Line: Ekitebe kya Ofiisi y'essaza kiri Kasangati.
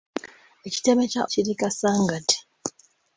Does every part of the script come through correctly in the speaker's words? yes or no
no